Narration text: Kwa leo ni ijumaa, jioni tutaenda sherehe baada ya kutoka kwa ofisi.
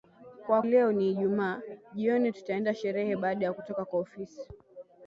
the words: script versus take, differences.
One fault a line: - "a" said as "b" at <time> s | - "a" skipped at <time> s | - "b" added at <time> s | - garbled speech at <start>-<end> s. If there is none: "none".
none